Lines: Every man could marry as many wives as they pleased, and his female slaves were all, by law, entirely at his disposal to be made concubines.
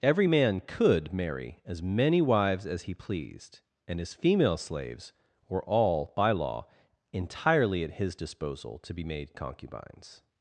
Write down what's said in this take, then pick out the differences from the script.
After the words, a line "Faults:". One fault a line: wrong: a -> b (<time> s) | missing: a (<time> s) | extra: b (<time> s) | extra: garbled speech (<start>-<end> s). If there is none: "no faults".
Every man could marry as many wives as he pleased, and his female slaves were all, by law, entirely at his disposal to be made concubines.
Faults:
wrong: they -> he (2.8 s)